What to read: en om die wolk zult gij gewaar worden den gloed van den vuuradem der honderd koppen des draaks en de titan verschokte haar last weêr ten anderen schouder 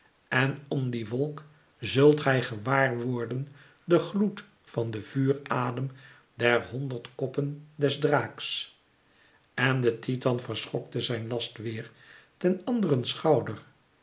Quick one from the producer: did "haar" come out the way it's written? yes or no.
no